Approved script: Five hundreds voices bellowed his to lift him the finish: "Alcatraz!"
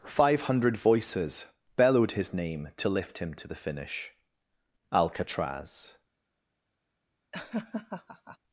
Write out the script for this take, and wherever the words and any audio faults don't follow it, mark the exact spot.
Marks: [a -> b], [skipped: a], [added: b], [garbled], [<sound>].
Five [hundreds -> hundred] voices bellowed his [added: name] to lift him [added: to] the finish: "Alcatraz!" [laugh]